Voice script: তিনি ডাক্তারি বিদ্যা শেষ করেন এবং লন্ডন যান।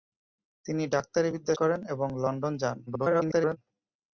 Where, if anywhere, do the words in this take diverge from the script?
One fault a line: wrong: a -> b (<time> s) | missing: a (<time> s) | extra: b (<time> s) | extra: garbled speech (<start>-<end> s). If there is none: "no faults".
missing: শেষ (1.5 s)
extra: garbled speech (2.9-3.6 s)